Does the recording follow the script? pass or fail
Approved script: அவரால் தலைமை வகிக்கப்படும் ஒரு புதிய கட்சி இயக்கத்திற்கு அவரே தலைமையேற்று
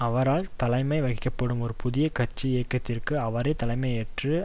pass